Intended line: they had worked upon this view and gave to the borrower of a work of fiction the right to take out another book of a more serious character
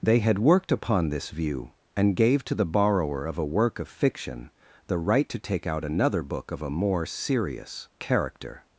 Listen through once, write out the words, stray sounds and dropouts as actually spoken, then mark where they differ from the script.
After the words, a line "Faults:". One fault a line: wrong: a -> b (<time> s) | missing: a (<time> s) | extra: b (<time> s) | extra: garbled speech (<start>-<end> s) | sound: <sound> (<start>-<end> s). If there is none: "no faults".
they had worked upon this view and gave to the borrower of a work of fiction the right to take out another book of a more serious character
Faults:
no faults